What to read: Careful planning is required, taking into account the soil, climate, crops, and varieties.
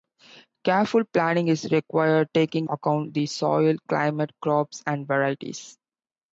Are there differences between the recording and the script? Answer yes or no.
yes